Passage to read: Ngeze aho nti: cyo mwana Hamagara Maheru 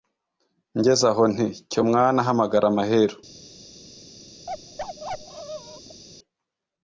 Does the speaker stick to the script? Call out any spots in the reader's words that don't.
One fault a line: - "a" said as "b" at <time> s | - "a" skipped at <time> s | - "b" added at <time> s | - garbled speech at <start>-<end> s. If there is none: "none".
none